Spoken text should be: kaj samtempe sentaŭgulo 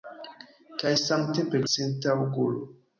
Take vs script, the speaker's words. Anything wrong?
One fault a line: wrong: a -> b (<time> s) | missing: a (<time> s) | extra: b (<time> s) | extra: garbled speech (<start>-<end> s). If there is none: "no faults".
no faults